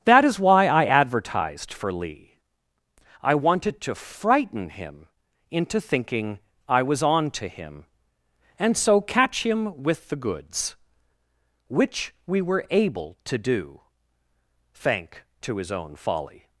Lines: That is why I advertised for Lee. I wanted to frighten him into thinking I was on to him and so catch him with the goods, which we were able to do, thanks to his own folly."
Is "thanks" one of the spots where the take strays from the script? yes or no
yes